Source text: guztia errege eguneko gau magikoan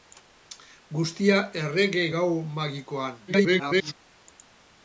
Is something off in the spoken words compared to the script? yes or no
yes